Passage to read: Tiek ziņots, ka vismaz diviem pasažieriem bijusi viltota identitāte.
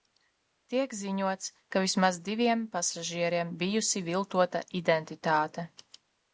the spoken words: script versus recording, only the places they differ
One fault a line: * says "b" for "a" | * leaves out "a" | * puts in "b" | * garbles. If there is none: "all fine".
all fine